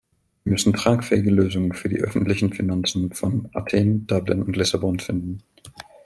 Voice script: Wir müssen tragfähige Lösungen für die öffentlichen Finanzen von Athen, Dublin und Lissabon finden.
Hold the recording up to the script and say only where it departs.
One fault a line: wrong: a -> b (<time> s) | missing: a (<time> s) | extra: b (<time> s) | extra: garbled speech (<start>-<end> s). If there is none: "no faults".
no faults